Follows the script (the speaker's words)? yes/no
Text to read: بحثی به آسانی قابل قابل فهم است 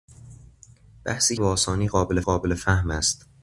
yes